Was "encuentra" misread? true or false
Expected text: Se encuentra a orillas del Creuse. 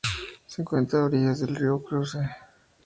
false